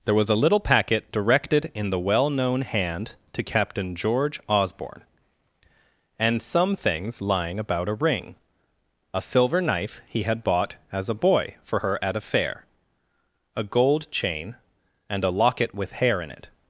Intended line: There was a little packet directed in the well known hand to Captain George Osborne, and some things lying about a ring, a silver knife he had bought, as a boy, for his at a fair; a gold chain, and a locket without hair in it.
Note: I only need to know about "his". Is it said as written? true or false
false